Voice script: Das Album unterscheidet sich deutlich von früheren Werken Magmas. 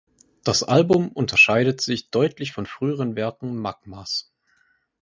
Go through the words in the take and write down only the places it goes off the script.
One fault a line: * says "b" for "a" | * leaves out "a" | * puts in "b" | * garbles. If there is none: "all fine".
all fine